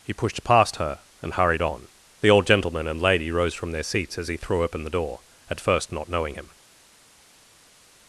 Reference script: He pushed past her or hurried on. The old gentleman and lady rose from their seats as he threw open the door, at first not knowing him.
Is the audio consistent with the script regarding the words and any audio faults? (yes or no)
no